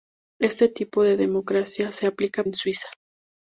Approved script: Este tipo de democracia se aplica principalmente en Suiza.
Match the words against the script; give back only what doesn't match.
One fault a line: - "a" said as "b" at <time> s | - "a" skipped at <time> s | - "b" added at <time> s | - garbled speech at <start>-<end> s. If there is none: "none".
- "principalmente" skipped at 2.4 s